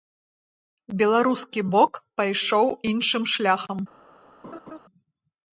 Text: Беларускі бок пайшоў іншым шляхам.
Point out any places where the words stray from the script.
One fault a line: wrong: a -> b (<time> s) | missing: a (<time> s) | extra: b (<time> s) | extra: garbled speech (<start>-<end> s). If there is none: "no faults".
no faults